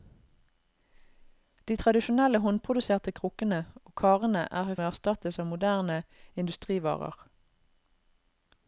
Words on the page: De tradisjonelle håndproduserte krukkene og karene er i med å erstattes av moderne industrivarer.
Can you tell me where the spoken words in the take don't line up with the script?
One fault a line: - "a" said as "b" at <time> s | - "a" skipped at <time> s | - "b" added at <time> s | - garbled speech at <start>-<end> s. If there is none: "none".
none